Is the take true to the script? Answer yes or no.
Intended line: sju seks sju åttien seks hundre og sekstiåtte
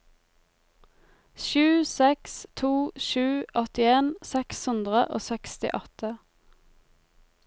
no